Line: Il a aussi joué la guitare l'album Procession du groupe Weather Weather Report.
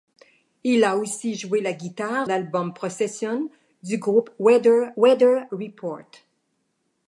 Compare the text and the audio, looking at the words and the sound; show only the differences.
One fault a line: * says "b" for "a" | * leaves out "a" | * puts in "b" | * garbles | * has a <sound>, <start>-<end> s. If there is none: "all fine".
all fine